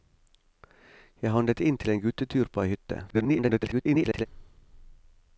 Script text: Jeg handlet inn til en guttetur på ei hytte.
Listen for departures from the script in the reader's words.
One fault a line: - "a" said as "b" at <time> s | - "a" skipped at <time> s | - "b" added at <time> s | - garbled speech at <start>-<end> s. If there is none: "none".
- garbled speech at 3.1-4.3 s